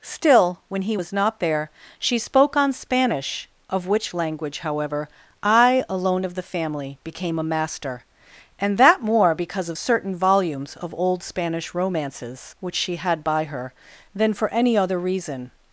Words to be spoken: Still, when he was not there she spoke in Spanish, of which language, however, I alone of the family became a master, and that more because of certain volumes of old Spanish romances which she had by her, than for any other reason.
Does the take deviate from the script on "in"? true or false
true